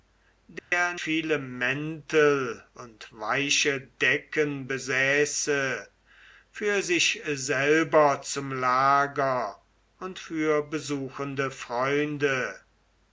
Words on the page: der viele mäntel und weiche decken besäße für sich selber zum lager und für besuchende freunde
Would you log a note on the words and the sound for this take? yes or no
yes